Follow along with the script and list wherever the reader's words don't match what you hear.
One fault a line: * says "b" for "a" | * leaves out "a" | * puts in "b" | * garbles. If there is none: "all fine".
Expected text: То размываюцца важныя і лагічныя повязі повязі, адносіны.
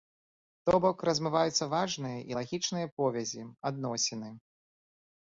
* puts in "бок"
* leaves out "повязі"